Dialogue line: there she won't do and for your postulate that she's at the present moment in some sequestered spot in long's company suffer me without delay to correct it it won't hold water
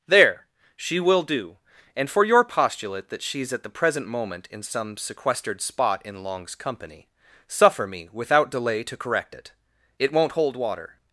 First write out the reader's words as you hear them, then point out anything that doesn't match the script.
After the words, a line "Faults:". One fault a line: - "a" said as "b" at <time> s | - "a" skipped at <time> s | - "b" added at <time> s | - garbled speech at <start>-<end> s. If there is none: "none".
there she will do and for your postulate that she's at the present moment in some sequestered spot in long's company suffer me without delay to correct it it won't hold water
Faults:
- "won't" said as "will" at 1.0 s